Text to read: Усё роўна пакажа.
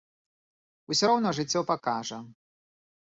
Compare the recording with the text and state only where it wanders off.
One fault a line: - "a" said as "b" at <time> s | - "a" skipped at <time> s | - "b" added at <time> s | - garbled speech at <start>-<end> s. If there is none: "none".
- "жыццё" added at 1.4 s